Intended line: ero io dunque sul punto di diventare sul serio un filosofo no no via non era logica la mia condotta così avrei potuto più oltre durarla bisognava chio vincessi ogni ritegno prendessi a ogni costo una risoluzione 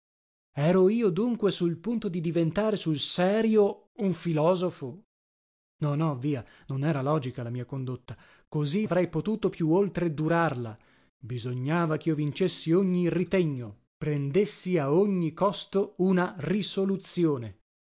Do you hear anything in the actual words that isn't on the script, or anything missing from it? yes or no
no